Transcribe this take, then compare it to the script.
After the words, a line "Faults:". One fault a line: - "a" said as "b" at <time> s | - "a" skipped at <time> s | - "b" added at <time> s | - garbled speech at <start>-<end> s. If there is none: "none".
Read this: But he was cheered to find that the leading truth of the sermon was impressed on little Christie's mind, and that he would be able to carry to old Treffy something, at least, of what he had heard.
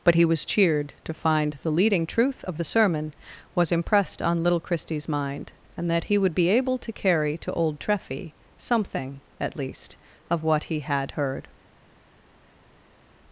But he was cheered to find the leading truth of the sermon was impressed on little Christie's mind, and that he would be able to carry to old Treffy something, at least, of what he had heard.
Faults:
- "that" skipped at 1.5 s